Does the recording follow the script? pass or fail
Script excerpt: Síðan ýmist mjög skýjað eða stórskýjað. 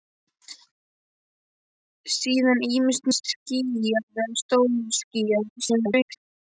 fail